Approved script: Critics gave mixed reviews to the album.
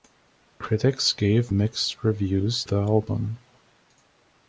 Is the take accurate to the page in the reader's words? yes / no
no